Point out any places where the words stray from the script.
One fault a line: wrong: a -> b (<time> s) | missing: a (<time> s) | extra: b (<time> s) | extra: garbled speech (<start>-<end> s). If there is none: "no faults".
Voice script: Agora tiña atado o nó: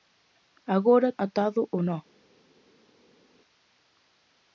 missing: tiña (1.1 s)